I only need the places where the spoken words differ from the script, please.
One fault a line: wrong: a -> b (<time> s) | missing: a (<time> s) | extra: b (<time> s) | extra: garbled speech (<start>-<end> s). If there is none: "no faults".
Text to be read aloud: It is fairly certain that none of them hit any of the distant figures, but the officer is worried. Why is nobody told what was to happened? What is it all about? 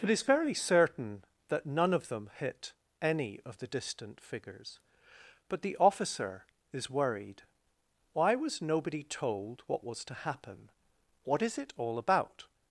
wrong: is -> was (8.3 s)
wrong: happened -> happen (10.2 s)